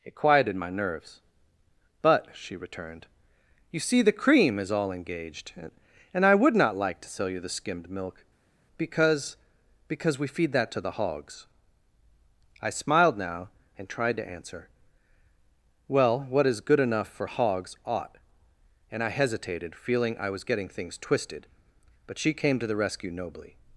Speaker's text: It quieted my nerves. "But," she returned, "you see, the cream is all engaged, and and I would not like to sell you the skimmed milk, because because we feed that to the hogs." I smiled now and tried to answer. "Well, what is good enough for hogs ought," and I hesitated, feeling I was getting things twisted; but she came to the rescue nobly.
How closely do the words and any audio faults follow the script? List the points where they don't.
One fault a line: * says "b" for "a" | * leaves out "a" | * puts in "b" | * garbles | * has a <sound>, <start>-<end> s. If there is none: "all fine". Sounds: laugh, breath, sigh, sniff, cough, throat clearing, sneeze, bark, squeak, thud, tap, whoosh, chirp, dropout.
* leaves out "and"